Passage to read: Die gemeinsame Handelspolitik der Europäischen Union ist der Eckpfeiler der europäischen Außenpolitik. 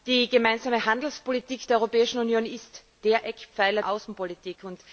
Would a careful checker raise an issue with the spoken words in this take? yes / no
yes